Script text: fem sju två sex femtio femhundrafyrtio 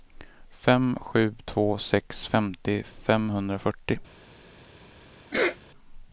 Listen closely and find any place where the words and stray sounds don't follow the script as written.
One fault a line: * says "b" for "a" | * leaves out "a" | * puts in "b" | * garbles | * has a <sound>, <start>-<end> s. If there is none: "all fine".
* has a sneeze, 5.3-5.6 s